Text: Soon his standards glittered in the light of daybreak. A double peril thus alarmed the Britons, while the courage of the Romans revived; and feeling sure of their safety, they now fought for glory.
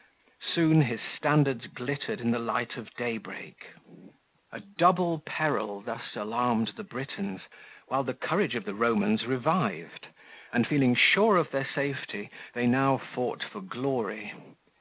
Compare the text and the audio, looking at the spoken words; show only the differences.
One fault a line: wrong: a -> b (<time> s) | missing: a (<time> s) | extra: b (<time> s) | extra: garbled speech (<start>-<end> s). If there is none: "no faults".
no faults